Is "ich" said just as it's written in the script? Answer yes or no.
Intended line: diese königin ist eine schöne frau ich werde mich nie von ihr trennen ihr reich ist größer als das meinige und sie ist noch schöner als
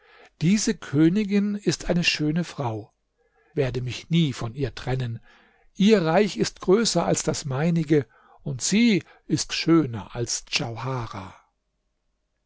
no